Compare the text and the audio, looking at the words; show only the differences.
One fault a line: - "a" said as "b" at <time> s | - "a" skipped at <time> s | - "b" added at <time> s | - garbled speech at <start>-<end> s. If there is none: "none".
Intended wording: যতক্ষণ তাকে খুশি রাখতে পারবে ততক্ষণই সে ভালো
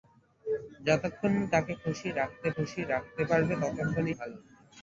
- "খুশি রাখতে" added at 2.5 s
- "সে" skipped at 4.1 s